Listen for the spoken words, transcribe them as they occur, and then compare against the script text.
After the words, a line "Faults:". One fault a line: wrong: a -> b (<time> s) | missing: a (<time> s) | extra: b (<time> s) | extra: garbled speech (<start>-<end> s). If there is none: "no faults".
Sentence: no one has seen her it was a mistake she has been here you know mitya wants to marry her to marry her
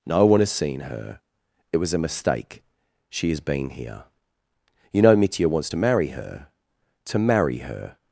no one has seen her it was a mistake she has been here you know mitya wants to marry her to marry her
Faults:
no faults